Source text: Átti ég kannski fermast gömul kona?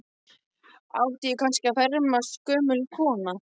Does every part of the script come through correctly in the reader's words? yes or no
yes